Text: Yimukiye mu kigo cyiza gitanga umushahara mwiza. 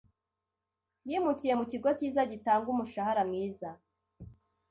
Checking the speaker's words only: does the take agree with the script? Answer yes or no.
yes